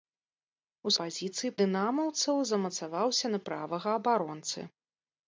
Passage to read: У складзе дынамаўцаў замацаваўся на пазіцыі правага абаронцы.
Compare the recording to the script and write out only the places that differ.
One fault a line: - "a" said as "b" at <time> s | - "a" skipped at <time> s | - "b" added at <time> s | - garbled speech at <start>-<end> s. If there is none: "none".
- "складзе" said as "пазіцыі" at 1.0 s
- "пазіцыі" skipped at 3.4 s